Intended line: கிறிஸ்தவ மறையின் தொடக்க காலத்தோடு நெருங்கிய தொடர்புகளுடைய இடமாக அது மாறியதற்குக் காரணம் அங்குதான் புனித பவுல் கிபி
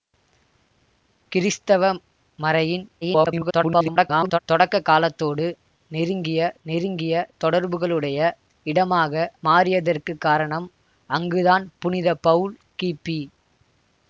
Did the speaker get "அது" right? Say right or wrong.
wrong